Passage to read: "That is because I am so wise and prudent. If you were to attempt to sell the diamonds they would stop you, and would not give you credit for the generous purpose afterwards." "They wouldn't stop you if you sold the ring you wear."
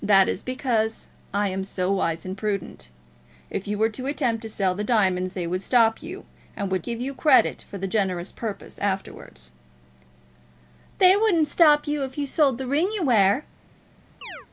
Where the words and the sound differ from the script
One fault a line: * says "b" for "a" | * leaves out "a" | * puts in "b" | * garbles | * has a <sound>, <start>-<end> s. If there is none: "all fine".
* leaves out "not"
* has a chirp, 14.2-14.5 s